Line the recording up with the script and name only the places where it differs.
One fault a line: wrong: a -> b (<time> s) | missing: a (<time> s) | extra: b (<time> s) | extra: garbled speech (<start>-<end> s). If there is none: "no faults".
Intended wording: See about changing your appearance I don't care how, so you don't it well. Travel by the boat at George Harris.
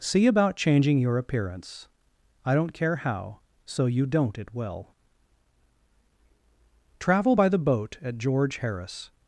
no faults